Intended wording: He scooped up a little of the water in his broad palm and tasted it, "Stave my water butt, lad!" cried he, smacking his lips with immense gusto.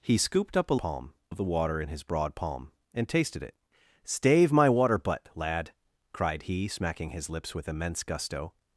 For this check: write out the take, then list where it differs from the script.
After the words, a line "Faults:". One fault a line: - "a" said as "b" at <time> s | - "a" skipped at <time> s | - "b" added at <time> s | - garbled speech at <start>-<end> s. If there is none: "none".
He scooped up a palm of the water in his broad palm and tasted it, "Stave my water butt, lad!" cried he, smacking his lips with immense gusto.
Faults:
- "little" said as "palm" at 0.8 s